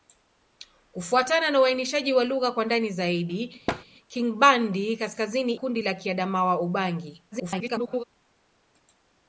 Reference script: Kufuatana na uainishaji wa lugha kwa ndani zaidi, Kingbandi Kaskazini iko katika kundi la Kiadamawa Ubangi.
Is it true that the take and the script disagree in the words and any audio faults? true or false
true